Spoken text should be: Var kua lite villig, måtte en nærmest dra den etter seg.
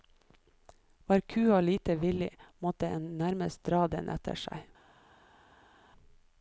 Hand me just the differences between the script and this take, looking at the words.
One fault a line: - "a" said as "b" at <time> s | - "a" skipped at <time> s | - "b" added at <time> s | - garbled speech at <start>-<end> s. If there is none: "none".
none